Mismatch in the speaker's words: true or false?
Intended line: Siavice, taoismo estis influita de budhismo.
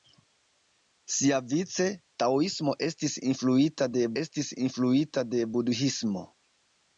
true